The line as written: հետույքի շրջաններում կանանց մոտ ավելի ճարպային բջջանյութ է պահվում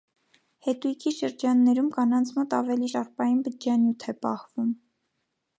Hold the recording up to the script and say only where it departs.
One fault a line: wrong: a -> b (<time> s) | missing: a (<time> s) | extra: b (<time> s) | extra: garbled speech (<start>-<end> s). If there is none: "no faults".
no faults